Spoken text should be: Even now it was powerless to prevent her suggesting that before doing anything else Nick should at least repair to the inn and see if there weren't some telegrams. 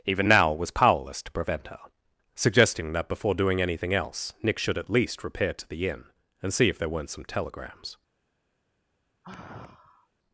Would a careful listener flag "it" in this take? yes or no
yes